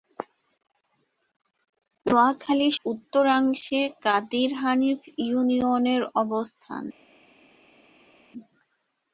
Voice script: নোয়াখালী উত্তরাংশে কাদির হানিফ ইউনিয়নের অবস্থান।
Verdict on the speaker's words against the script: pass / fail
pass